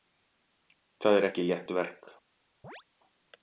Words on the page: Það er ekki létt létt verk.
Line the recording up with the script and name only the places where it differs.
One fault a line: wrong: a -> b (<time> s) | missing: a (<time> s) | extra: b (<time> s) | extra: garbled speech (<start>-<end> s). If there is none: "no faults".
missing: létt (1.8 s)